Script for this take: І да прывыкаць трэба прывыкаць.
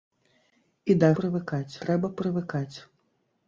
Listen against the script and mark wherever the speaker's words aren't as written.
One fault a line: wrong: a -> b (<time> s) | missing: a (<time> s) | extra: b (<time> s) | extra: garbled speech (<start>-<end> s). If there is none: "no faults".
no faults